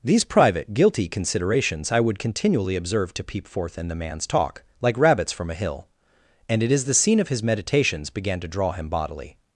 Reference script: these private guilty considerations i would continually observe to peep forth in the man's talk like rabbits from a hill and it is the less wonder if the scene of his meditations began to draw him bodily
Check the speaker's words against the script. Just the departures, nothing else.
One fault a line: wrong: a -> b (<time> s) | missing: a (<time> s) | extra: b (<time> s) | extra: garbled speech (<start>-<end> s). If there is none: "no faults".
missing: less wonder if the (6.9 s)